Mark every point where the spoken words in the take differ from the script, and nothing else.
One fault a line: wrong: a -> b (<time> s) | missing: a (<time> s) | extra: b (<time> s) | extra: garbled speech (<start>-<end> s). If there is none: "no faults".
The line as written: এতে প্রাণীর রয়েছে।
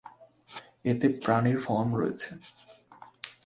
extra: ফর্ম (1.6 s)